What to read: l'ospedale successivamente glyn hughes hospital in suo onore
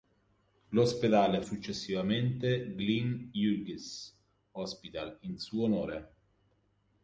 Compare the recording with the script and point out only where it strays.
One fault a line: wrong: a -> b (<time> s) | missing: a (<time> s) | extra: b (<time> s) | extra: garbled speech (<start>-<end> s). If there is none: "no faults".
no faults